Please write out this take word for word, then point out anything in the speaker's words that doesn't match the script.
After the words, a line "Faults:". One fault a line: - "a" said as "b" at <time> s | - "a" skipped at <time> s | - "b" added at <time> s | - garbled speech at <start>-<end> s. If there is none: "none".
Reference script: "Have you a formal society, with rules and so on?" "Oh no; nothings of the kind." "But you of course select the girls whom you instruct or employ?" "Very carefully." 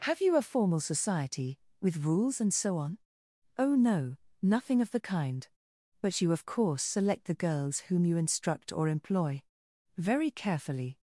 "Have you a formal society, with rules and so on?" "Oh no; nothing of the kind." "But you of course select the girls whom you instruct or employ?" "Very carefully."
Faults:
- "nothings" said as "nothing" at 4.4 s